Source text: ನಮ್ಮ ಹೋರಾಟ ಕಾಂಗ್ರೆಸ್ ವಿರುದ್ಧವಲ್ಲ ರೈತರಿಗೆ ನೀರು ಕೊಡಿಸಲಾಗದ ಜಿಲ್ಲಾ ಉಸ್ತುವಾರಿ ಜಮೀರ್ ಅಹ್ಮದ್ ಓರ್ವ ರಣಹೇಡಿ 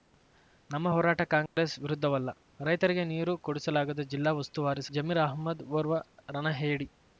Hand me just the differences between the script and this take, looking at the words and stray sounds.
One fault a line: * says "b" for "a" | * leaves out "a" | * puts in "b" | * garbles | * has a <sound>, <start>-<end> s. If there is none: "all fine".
* has a dropout, 1.5-1.6 s